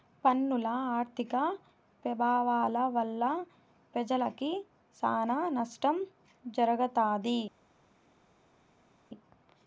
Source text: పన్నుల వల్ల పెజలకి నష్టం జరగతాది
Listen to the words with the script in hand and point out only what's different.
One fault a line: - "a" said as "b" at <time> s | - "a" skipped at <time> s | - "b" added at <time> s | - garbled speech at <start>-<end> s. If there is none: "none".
- "ఆర్థిక పెభావాల" added at 0.9 s
- "సానా" added at 5.0 s